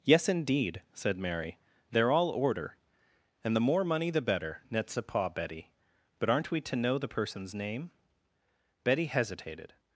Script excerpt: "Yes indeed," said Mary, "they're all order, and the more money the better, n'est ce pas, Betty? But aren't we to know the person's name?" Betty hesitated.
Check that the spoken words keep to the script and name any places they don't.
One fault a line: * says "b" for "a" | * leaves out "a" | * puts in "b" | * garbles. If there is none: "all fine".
all fine